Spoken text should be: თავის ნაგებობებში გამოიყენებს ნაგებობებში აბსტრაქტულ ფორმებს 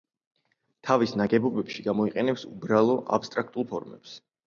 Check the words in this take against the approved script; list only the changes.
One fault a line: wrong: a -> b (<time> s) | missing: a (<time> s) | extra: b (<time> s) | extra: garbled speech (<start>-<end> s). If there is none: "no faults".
wrong: ნაგებობებში -> უბრალო (2.5 s)